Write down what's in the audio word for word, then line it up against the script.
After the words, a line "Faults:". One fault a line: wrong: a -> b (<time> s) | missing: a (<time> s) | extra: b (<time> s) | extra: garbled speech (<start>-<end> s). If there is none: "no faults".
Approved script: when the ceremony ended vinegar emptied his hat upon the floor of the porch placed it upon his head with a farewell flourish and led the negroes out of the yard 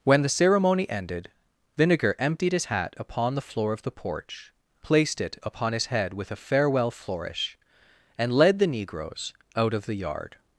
when the ceremony ended vinegar emptied his hat upon the floor of the porch placed it upon his head with a farewell flourish and led the negroes out of the yard
Faults:
no faults